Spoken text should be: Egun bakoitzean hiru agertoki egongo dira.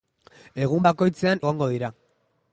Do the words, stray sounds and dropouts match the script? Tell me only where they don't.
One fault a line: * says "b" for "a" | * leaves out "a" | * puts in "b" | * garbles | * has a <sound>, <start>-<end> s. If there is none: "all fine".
* leaves out "hiru agertoki"